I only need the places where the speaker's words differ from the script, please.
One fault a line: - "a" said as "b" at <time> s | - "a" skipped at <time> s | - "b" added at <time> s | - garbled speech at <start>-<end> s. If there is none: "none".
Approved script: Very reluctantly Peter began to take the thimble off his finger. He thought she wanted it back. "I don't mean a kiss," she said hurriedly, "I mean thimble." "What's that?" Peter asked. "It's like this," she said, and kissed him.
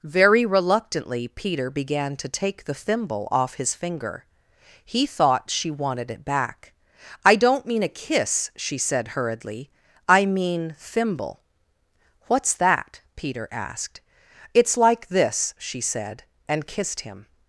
none